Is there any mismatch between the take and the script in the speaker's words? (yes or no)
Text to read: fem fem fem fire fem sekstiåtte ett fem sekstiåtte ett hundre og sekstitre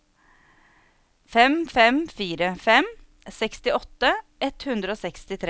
yes